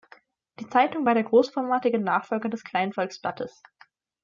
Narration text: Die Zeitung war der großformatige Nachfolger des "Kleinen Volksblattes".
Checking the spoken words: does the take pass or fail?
pass